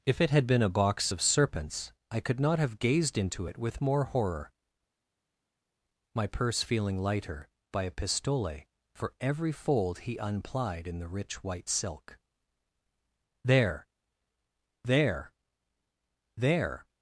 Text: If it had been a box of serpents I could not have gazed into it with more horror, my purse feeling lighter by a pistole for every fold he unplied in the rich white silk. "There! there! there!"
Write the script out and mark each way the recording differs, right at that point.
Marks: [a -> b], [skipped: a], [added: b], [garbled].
If it had been a box of serpents I could not have gazed into it with more horror, my purse feeling lighter by a pistole for every fold he unplied in the rich white silk. "There! there! there!"